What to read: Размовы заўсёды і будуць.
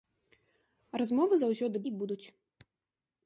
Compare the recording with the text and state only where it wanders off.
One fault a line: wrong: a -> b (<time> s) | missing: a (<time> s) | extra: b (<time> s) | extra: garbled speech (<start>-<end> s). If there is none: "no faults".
no faults